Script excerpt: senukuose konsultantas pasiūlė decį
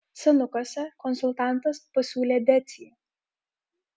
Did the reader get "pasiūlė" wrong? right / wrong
right